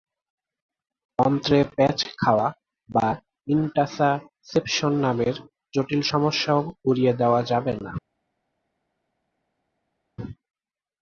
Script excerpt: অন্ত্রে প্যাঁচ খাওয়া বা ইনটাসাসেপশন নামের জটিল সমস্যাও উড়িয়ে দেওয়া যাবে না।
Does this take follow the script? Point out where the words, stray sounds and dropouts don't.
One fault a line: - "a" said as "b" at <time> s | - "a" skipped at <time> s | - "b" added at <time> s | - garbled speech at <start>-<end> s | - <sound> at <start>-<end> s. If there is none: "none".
none